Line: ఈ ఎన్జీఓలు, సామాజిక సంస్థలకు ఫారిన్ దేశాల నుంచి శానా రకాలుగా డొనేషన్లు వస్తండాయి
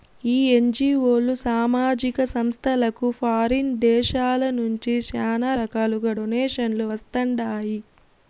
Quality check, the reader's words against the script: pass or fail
pass